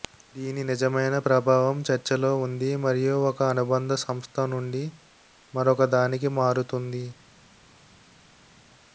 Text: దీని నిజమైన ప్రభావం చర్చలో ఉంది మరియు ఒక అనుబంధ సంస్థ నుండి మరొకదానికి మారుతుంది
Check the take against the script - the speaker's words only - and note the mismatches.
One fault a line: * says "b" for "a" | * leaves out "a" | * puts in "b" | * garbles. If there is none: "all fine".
all fine